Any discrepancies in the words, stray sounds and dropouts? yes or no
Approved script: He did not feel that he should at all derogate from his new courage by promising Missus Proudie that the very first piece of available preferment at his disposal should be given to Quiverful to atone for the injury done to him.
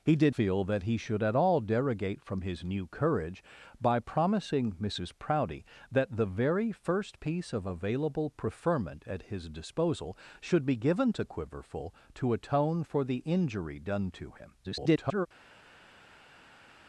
yes